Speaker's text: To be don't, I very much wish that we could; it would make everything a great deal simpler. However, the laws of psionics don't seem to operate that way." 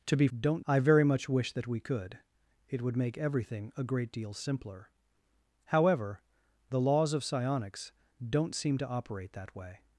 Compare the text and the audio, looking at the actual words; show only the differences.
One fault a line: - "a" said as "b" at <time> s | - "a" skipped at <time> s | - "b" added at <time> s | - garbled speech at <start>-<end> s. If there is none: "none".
none